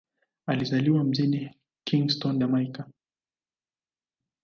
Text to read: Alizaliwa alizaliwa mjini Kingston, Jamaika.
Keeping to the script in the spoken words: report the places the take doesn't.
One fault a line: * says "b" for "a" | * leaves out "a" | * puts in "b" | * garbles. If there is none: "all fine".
* leaves out "alizaliwa"